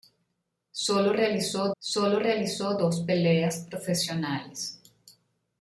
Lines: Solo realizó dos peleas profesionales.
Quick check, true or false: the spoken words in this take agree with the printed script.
false